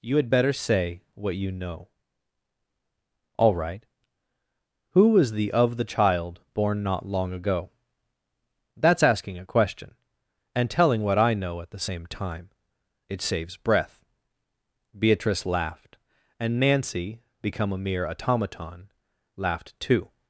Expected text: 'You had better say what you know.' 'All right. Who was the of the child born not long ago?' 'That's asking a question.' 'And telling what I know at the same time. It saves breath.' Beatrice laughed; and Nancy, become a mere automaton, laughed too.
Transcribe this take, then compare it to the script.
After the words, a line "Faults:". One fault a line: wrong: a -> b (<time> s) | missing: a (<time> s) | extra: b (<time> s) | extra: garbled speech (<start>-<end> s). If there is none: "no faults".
'You had better say what you know.' 'All right. Who was the of the child born not long ago?' 'That's asking a question.' 'And telling what I know at the same time. It saves breath.' Beatrice laughed; and Nancy, become a mere automaton, laughed too.
Faults:
no faults